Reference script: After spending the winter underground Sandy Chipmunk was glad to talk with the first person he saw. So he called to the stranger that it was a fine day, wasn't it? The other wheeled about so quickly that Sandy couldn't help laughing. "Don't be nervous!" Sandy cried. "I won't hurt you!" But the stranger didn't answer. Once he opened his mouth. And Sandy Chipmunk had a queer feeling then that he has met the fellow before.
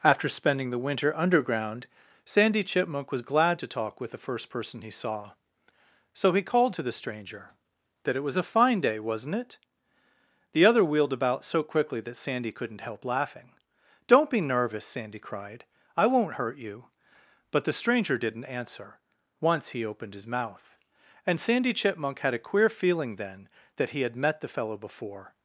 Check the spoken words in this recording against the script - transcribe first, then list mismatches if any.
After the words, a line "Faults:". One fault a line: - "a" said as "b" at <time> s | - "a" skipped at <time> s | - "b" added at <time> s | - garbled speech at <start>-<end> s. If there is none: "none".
After spending the winter underground Sandy Chipmunk was glad to talk with the first person he saw. So he called to the stranger that it was a fine day, wasn't it? The other wheeled about so quickly that Sandy couldn't help laughing. "Don't be nervous!" Sandy cried. "I won't hurt you!" But the stranger didn't answer. Once he opened his mouth. And Sandy Chipmunk had a queer feeling then that he had met the fellow before.
Faults:
- "has" said as "had" at 24.0 s